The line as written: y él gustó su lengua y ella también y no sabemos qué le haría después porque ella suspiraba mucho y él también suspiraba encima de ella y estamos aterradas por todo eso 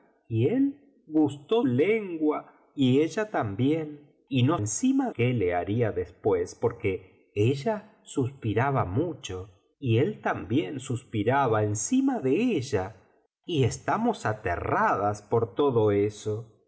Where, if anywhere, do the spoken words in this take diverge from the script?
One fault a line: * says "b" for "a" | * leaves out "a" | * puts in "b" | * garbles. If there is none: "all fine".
* leaves out "su"
* says "encima" for "sabemos"